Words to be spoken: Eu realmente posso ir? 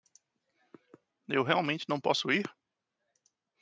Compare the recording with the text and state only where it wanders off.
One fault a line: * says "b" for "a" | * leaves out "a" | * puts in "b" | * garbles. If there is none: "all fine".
* puts in "não"